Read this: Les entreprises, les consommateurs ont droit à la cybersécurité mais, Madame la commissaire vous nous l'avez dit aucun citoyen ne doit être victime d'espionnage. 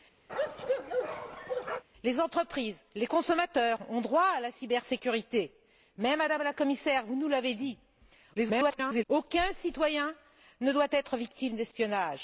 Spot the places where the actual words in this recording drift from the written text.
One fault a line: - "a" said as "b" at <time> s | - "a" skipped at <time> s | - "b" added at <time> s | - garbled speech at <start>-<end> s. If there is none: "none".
- garbled speech at 8.3-9.1 s